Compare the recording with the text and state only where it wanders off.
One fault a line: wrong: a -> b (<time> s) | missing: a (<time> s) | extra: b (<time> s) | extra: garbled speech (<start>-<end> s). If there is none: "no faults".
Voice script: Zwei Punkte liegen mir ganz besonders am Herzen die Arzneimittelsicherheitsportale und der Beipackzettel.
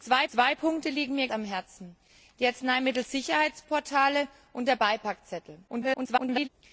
extra: zwei (0.3 s)
missing: ganz besonders (1.3 s)
extra: garbled speech (5.7-6.5 s)